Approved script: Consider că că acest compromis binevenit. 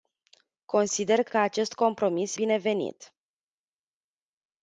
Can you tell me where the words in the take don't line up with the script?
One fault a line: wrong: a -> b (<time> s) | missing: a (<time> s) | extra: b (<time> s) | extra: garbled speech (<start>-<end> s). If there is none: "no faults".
no faults